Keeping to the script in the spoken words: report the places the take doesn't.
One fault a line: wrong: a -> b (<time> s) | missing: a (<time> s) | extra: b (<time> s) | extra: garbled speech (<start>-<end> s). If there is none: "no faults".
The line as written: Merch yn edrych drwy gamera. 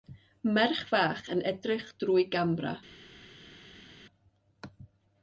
extra: fach (0.9 s)